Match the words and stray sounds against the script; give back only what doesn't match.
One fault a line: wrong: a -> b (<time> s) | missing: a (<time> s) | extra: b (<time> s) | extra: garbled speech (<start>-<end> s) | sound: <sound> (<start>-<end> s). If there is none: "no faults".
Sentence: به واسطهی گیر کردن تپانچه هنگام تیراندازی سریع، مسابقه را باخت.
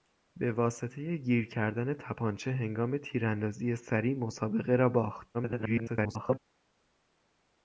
extra: garbled speech (5.3-6.4 s)